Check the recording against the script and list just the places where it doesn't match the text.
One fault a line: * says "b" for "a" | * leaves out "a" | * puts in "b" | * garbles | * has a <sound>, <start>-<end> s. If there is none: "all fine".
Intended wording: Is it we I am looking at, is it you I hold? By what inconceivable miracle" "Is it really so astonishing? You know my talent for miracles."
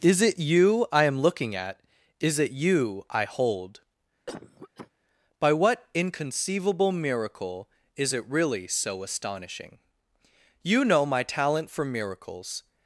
* says "you" for "we"
* has a cough, 4.3-4.9 s